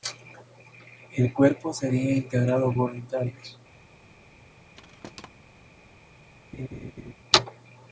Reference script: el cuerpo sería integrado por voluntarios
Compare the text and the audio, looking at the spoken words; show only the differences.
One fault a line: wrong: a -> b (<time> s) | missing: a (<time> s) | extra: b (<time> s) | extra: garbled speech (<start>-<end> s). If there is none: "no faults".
missing: por (2.8 s)